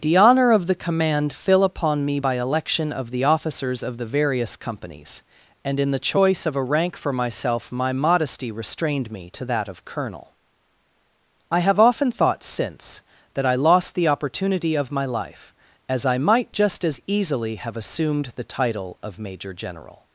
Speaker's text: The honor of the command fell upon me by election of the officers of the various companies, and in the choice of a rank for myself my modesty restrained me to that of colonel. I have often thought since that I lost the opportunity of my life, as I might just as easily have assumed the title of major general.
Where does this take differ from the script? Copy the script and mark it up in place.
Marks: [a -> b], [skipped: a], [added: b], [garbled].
The honor of the command [fell -> fill] upon me by election of the officers of the various companies, and in the choice of a rank for myself my modesty restrained me to that of colonel. I have often thought since that I lost the opportunity of my life, as I might just as easily have assumed the title of major general.